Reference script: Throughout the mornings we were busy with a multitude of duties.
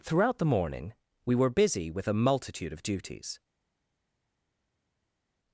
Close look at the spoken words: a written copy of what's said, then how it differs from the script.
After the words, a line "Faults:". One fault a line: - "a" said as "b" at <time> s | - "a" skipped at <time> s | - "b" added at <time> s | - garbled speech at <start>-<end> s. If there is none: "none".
Throughout the morning we were busy with a multitude of duties.
Faults:
- "mornings" said as "morning" at 0.5 s